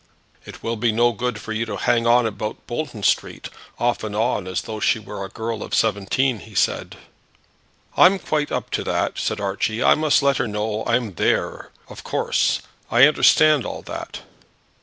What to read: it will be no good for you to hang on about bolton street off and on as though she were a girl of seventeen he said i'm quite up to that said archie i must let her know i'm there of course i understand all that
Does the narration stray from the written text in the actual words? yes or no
no